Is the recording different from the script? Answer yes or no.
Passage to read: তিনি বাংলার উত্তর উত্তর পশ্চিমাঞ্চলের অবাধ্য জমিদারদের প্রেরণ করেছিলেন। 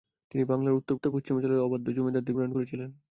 no